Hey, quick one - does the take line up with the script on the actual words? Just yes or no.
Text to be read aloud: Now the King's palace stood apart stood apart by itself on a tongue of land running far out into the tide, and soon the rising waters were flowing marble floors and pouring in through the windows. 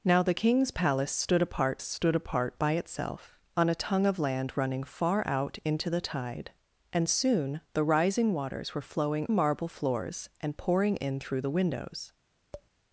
yes